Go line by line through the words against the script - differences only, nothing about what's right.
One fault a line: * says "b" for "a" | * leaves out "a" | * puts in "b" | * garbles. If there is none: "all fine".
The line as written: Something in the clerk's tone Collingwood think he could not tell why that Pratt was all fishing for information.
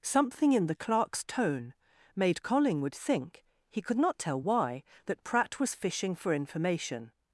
* puts in "made"
* leaves out "all"